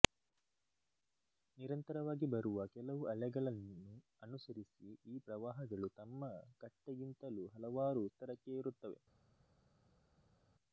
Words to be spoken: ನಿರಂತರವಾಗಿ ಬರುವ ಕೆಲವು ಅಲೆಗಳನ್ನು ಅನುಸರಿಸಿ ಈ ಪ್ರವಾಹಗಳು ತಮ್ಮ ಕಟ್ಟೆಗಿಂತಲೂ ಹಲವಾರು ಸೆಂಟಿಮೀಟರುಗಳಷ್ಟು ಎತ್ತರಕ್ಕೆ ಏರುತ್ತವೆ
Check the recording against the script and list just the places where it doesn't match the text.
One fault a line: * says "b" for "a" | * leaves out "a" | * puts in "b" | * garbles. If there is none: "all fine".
* leaves out "ಸೆಂಟಿಮೀಟರುಗಳಷ್ಟು"